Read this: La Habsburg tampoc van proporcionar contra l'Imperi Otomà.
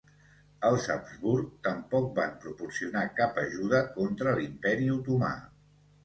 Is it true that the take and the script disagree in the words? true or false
true